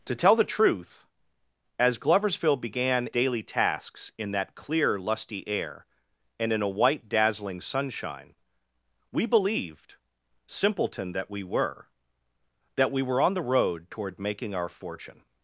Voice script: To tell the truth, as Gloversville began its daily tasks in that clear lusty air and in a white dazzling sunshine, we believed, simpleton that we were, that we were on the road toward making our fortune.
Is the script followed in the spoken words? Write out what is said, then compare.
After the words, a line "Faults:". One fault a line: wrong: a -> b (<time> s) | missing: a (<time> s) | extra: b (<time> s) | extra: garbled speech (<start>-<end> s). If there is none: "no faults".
To tell the truth, as Gloversville began daily tasks in that clear lusty air and in a white dazzling sunshine, we believed, simpleton that we were, that we were on the road toward making our fortune.
Faults:
missing: its (3.1 s)